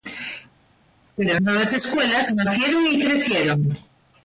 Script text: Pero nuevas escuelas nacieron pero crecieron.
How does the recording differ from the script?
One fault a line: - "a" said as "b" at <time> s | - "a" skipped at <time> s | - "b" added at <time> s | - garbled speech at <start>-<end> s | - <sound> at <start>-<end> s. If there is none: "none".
- "pero" said as "y" at 2.9 s